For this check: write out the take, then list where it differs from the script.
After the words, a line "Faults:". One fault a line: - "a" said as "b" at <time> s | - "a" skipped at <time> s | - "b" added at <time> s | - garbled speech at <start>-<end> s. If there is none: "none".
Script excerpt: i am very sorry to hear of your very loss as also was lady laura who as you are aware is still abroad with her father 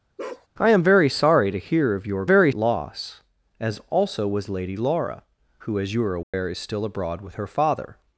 i am very sorry to hear of your very loss as also was lady laura who as you are aware is still abroad with her father
Faults:
none